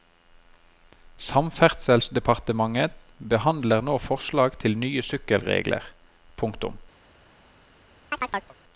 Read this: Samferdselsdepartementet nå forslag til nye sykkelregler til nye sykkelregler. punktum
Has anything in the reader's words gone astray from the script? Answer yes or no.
yes